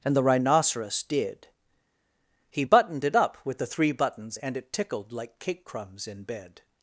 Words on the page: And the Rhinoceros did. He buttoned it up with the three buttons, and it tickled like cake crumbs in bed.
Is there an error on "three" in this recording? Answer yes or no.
no